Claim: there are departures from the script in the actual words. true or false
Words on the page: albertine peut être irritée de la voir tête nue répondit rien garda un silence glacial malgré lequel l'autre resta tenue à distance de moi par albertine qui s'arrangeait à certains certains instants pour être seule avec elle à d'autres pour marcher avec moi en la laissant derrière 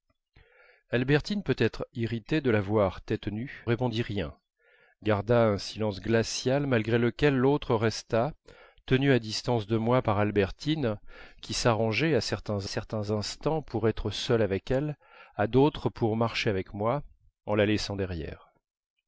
false